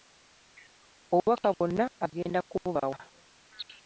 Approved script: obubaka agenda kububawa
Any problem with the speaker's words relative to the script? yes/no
yes